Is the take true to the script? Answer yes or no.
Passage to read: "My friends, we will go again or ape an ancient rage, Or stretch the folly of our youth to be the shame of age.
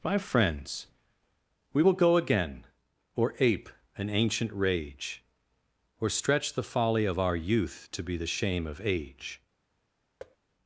yes